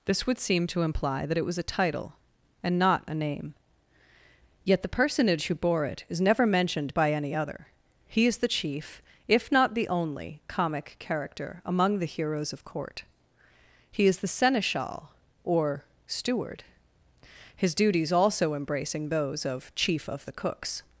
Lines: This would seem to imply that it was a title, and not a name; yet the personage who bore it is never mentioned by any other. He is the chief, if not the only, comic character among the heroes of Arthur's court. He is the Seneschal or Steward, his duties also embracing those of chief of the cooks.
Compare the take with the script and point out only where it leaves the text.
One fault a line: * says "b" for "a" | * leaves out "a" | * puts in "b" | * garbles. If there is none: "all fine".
* leaves out "Arthur's"